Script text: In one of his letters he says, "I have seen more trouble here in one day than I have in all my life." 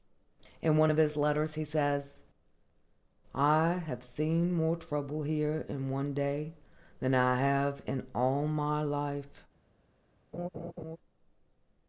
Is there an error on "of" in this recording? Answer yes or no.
no